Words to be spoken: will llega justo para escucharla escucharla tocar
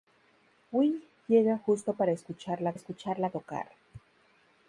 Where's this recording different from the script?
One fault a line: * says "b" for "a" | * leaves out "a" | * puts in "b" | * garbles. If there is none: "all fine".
all fine